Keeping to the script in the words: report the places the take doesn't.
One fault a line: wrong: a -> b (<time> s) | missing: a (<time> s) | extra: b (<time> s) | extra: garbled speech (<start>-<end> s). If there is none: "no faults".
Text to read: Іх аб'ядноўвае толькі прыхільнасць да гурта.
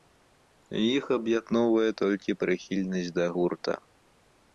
no faults